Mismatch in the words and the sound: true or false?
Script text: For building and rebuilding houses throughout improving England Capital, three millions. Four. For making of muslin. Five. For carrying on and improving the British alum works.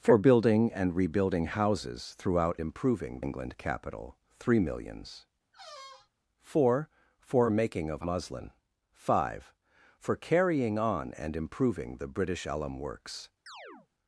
true